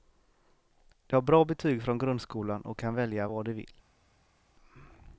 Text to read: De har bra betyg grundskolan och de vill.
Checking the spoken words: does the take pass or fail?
fail